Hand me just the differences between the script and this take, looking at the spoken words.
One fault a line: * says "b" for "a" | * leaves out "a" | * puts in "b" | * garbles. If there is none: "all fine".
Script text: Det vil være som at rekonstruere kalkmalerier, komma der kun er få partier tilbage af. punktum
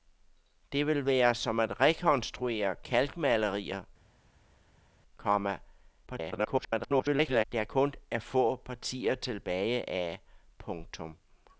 * garbles